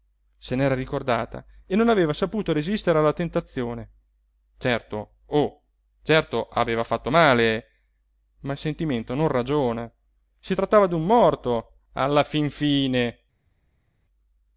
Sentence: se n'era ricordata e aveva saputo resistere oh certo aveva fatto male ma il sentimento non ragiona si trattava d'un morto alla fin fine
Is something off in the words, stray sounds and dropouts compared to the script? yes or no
yes